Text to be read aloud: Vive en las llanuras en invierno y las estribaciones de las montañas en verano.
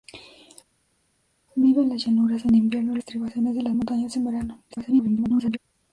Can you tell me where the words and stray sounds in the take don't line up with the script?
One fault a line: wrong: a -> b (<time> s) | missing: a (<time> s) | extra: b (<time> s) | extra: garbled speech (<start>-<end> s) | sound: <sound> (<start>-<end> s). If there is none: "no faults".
missing: las (3.0 s)
extra: garbled speech (4.7-5.6 s)